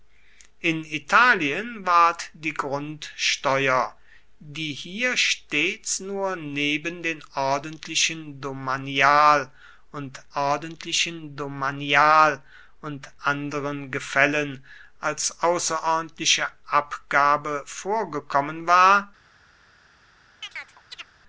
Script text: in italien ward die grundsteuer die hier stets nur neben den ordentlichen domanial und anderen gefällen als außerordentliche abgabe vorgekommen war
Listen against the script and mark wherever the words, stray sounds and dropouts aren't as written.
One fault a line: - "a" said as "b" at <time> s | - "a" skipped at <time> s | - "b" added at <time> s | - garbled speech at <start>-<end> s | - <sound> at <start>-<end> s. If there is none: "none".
- "ordentlichen domanial und" added at 10.3 s
- chirp at 20.4-21.1 s